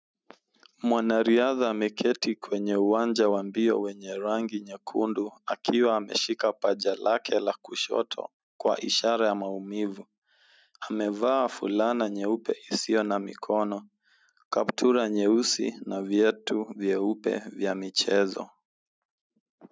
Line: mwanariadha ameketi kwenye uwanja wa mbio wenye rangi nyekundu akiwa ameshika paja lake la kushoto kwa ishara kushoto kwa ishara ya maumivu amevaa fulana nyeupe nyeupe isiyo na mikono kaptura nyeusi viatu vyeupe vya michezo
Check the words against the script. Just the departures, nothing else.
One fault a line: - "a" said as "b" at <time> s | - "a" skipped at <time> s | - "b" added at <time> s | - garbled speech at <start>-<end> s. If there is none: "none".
- "kushoto kwa ishara" skipped at 9.3 s
- "nyeupe" skipped at 12.5 s
- "na" added at 15.8 s